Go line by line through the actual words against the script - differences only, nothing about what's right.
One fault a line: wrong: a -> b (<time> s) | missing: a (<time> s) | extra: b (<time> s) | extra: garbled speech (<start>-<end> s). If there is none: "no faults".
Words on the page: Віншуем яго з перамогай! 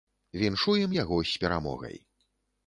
no faults